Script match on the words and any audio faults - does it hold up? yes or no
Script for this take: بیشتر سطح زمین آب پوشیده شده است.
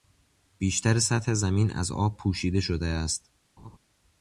no